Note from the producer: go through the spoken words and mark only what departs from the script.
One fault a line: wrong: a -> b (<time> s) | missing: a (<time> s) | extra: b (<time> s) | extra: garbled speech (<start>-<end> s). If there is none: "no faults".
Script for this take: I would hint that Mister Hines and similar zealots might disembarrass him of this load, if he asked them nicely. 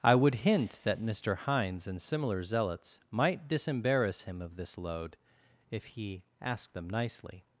no faults